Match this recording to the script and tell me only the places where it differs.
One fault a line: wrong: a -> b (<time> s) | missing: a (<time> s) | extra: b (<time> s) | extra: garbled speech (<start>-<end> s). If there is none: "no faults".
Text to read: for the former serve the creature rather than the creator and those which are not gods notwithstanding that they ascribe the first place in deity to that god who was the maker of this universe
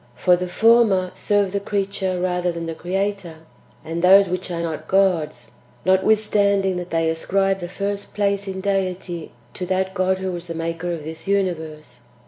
no faults